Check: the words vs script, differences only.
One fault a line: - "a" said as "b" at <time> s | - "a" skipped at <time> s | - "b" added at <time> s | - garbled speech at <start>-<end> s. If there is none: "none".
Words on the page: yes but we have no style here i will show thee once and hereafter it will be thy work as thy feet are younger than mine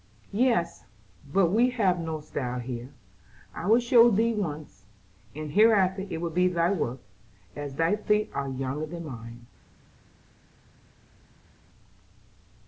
none